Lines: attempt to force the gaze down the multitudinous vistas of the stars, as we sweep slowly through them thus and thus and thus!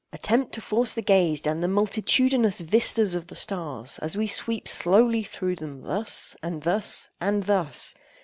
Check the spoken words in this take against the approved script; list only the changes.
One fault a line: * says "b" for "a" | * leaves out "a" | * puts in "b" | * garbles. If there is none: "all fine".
all fine